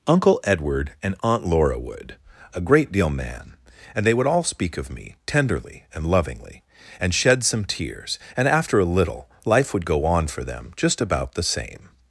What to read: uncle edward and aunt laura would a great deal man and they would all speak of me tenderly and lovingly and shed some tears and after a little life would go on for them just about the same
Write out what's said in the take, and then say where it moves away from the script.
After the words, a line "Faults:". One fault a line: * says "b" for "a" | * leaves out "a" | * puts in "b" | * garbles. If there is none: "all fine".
uncle edward and aunt laura would a great deal man and they would all speak of me tenderly and lovingly and shed some tears and after a little life would go on for them just about the same
Faults:
all fine